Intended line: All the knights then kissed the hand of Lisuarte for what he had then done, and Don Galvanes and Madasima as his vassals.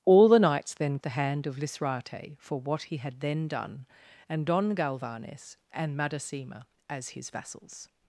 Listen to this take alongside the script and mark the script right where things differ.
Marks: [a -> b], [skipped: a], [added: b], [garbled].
All the knights then [skipped: kissed] the hand of Lisuarte for what he had then done, and Don Galvanes and Madasima as his vassals.